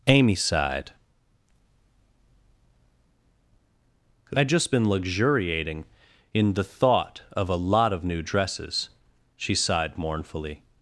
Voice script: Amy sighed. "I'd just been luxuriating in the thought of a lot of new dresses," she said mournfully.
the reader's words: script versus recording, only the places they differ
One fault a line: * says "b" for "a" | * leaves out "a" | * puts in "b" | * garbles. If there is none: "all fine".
* says "sighed" for "said"